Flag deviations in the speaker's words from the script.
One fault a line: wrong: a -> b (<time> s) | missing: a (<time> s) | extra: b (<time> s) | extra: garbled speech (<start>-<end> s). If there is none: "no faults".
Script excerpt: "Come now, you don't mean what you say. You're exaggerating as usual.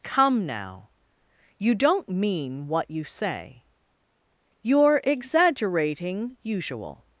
missing: as (6.4 s)